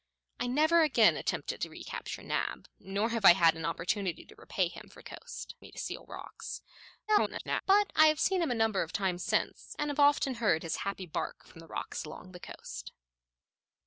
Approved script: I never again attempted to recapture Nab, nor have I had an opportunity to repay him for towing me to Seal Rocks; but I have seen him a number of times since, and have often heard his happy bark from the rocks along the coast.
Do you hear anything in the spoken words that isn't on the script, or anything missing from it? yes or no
yes